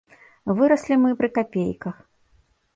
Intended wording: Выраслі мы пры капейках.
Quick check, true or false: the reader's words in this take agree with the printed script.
true